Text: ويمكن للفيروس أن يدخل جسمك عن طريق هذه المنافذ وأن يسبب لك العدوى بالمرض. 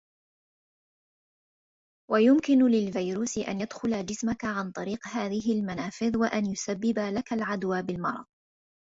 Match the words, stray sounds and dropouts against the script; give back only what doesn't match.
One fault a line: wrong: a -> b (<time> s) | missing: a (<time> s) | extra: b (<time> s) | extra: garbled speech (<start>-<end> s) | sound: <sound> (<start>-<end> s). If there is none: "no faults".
no faults